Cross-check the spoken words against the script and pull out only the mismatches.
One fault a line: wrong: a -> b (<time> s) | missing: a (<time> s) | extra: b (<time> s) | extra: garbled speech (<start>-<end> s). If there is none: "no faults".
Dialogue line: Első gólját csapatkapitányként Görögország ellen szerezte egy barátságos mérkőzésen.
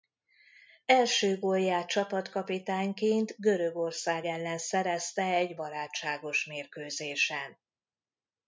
no faults